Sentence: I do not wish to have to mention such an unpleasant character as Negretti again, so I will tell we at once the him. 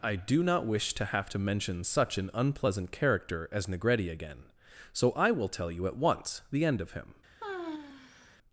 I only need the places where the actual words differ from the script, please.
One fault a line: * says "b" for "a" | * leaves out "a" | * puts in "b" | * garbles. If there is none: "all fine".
* says "you" for "we"
* puts in "end of"